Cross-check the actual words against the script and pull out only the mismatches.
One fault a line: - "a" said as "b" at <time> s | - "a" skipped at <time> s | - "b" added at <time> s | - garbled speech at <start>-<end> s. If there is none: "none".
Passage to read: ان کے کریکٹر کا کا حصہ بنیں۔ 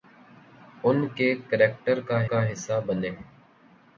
none